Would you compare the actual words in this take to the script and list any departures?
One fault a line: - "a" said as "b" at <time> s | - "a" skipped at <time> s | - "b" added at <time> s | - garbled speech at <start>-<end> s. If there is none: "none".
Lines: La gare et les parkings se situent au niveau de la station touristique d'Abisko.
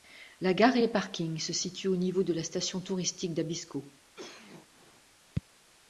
none